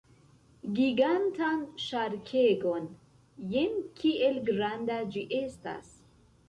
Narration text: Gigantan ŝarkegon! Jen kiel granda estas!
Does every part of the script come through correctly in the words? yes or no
no